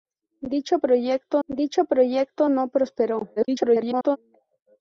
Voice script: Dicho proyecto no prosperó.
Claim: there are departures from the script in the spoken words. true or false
true